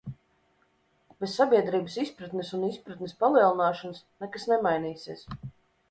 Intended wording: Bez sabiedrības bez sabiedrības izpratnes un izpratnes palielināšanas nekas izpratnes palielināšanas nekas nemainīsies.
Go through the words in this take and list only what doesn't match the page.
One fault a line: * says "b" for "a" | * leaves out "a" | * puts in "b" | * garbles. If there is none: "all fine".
* leaves out "bez sabiedrības"
* leaves out "izpratnes palielināšanas nekas"